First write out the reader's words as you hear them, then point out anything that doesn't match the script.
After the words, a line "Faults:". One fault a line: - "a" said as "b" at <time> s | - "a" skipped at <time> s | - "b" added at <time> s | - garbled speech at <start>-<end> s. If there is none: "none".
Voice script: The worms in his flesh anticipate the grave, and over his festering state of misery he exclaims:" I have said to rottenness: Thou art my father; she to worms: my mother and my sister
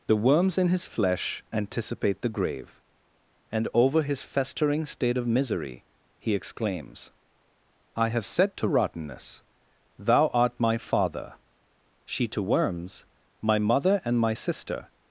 The worms in his flesh anticipate the grave, and over his festering state of misery he exclaims:" I have said to rottenness: Thou art my father; she to worms: my mother and my sister
Faults:
none